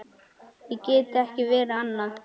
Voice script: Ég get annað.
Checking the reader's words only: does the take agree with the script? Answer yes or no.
no